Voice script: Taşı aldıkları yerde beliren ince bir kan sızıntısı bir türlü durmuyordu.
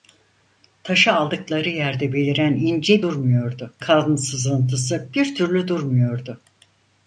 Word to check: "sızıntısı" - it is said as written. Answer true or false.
true